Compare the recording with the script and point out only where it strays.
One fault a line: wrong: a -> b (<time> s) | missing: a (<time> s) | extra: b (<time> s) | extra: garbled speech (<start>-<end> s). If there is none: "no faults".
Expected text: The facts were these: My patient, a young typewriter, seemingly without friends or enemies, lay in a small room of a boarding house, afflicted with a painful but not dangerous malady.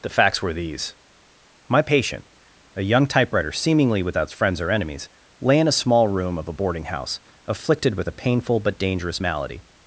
missing: not (8.8 s)